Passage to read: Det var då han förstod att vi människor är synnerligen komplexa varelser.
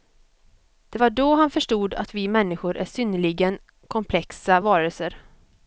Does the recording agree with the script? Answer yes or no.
yes